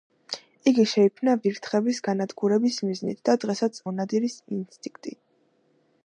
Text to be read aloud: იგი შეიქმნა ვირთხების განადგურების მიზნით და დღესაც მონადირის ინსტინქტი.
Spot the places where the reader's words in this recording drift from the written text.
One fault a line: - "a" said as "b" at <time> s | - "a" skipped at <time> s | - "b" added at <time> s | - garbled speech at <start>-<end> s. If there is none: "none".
none